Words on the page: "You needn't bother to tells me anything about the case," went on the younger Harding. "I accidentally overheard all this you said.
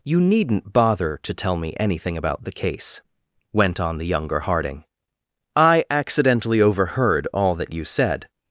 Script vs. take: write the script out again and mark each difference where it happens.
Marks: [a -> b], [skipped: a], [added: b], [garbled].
"You needn't bother to [tells -> tell] me anything about the case," went on the younger Harding. "I accidentally overheard all [this -> that] you said.